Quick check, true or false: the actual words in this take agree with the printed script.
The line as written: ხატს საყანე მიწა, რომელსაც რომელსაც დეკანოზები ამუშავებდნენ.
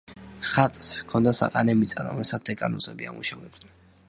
false